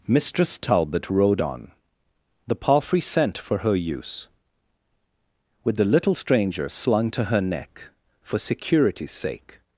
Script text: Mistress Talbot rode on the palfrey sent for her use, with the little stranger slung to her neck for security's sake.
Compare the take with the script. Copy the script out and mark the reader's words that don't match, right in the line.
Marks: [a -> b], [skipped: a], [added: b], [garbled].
Mistress Talbot rode on the palfrey sent for her use, with the little stranger slung to her neck for security's sake.